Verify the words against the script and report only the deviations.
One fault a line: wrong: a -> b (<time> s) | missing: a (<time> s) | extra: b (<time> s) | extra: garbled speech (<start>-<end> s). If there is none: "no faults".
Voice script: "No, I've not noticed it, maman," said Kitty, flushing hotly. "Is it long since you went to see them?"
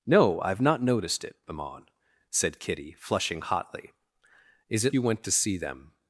missing: long since (5.0 s)